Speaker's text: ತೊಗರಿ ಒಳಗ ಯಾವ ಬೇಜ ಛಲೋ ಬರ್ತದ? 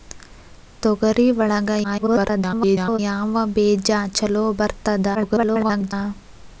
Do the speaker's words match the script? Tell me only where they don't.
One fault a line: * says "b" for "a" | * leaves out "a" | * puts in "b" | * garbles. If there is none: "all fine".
* garbles
* garbles